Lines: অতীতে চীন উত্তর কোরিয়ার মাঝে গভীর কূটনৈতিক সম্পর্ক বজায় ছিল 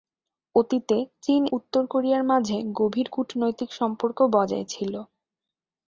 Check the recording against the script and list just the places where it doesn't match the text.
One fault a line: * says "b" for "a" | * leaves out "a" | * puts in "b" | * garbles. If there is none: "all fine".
all fine